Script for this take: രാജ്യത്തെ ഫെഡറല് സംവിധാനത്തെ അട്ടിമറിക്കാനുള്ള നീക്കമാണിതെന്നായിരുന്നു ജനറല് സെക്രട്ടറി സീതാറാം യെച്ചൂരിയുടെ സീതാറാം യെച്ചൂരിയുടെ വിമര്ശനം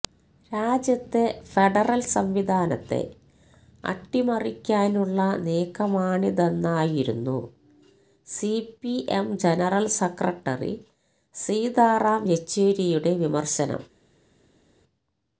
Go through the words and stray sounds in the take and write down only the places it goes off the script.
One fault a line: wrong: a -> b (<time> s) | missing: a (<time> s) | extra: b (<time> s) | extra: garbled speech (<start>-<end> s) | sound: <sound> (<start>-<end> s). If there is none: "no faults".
extra: സിപിഎം (8.3 s)
missing: സീതാറാം യെച്ചൂരിയുടെ (13.1 s)